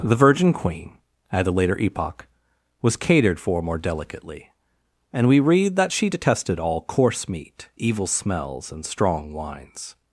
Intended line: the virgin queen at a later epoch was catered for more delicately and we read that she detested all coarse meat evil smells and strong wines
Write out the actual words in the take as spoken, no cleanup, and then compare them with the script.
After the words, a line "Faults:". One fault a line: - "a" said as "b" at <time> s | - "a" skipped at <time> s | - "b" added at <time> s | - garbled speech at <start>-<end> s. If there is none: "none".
the virgin queen at a later epoch was catered for more delicately and we read that she detested all coarse meat evil smells and strong wines
Faults:
none